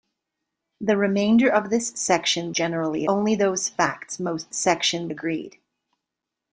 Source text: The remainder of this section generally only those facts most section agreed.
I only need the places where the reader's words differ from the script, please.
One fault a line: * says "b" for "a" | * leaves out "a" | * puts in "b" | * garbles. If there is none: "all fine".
all fine